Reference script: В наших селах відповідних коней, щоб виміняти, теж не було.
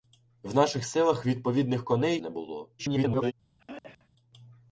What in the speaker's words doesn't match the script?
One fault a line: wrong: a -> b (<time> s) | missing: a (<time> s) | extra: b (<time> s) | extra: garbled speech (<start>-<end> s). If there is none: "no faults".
missing: щоб виміняти теж (2.2 s)
extra: garbled speech (2.8-3.3 s)